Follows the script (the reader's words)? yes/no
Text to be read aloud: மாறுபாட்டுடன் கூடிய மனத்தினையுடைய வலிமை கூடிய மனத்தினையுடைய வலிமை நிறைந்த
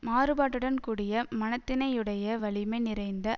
no